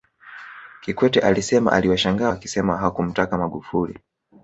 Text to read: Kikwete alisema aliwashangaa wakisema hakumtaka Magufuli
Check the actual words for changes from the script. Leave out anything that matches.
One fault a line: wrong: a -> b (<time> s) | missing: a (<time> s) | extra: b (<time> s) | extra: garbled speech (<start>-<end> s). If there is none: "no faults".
no faults